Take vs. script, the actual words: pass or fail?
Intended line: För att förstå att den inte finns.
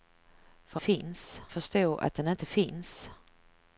fail